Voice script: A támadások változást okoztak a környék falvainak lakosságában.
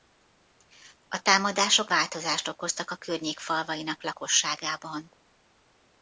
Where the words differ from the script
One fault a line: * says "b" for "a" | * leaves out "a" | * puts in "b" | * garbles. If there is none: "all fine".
all fine